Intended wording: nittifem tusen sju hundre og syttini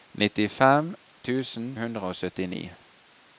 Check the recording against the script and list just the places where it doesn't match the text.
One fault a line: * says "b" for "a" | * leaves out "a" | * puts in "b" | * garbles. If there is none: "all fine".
* leaves out "sju"